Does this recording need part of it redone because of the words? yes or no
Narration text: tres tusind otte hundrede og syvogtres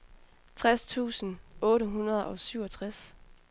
no